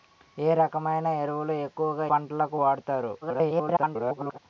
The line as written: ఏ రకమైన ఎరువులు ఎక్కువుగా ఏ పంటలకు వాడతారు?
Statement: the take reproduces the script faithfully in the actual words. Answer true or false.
false